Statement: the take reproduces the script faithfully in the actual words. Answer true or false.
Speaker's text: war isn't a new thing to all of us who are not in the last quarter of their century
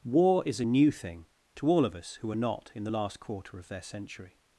false